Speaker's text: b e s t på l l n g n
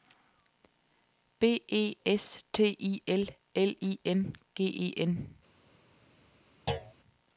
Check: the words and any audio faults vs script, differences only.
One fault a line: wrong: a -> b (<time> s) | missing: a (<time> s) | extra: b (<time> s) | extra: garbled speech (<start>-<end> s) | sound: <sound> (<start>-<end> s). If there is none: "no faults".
wrong: på -> i (2.8 s)
extra: i (3.8 s)
extra: e (4.7 s)
sound: thud (6.7-6.9 s)